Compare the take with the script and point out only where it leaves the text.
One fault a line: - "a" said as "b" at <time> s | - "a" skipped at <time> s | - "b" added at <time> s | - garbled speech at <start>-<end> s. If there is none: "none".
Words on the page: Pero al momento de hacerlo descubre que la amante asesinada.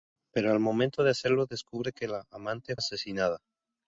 none